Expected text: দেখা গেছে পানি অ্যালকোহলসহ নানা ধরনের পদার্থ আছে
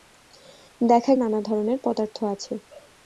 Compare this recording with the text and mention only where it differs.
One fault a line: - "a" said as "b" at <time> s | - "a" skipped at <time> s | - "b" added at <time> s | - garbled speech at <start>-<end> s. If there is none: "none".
- "গেছে পানি অ্যালকোহলসহ" skipped at 1.1 s